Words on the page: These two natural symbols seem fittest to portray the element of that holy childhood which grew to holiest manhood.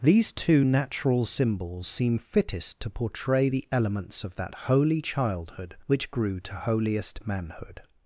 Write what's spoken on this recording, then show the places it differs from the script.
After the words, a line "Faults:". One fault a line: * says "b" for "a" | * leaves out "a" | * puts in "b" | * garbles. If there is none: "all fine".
These two natural symbols seem fittest to portray the elements of that holy childhood which grew to holiest manhood.
Faults:
* says "elements" for "element"